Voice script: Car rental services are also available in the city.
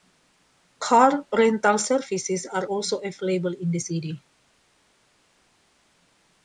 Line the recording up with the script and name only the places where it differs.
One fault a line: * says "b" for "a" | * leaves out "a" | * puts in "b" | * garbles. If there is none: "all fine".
all fine